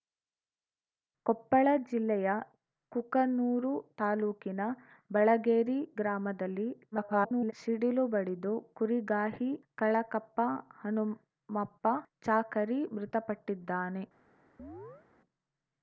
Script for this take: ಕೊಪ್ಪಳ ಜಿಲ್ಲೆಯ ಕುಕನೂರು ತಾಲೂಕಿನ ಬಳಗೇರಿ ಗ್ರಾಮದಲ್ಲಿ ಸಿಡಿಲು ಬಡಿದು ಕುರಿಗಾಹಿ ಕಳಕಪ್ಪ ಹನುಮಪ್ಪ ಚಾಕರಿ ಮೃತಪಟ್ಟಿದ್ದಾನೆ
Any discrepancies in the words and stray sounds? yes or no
yes